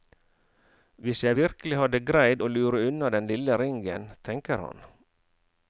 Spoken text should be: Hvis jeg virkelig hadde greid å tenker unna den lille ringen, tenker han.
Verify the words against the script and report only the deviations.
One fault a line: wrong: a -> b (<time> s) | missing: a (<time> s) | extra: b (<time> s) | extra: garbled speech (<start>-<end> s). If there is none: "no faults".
wrong: tenker -> lure (2.5 s)